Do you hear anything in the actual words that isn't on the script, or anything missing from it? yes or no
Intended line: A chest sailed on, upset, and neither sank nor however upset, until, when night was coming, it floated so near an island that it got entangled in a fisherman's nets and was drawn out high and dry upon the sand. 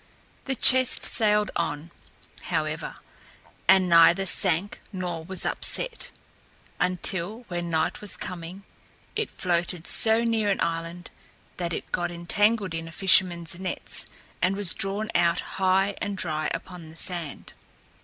yes